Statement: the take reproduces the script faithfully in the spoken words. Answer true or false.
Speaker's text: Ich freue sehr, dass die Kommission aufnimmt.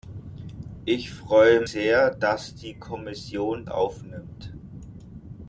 true